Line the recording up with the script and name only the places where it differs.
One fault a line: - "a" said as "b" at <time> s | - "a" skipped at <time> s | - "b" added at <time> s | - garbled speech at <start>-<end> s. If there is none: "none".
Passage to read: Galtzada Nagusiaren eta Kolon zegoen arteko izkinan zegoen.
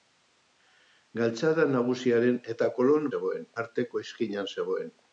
none